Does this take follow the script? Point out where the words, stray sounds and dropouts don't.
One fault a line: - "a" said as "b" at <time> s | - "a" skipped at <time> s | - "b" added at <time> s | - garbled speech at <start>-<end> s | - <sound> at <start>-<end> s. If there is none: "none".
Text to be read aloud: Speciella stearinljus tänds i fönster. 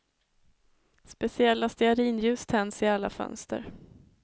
- "alla" added at 2.9 s